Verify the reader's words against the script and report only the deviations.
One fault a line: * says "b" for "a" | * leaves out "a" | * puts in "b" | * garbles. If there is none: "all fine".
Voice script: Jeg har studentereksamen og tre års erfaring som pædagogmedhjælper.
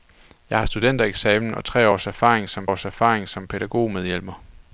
* puts in "års erfaring som"